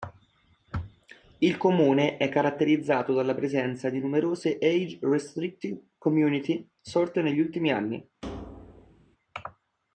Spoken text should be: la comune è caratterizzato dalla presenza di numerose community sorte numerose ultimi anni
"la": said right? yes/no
no